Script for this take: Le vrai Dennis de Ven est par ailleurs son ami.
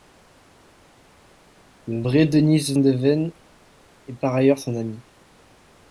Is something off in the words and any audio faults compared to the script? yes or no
no